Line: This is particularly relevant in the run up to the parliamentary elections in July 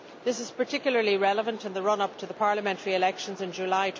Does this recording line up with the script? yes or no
yes